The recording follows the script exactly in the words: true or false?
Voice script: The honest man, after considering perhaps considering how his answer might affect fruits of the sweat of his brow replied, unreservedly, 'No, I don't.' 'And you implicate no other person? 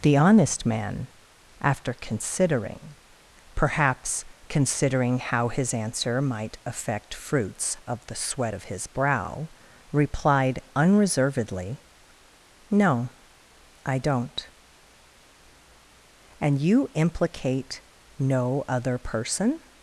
true